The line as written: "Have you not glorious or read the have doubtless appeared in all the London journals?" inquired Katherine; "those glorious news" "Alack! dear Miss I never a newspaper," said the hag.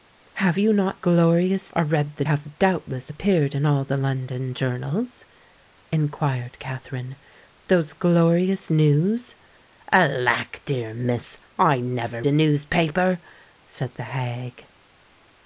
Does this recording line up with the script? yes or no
yes